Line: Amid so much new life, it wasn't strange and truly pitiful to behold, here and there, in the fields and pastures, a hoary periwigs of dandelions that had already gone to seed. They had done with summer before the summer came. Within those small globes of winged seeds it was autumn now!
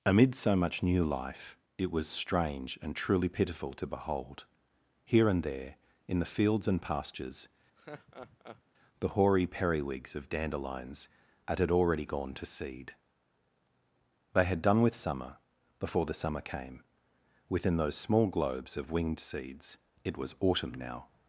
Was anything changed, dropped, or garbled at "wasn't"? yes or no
yes